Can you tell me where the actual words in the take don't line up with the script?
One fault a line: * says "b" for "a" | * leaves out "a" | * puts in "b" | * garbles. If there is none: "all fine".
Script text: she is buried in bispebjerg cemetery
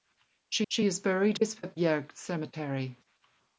* puts in "she"
* leaves out "in"